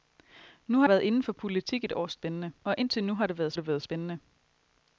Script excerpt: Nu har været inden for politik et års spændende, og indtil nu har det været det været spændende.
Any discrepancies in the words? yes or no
no